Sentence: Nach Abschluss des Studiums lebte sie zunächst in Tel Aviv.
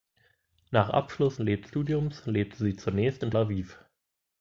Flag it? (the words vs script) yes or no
yes